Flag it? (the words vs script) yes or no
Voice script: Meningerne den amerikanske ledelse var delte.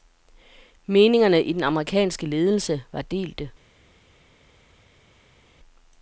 yes